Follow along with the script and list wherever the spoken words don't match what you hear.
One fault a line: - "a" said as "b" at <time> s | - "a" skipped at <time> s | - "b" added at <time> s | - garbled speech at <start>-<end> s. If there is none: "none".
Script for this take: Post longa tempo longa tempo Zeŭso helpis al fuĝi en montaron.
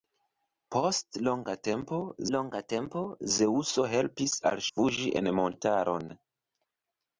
none